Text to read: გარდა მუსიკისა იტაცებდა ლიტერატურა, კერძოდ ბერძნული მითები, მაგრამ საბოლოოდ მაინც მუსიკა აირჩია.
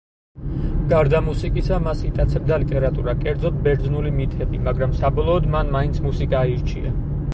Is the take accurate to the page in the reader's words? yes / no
no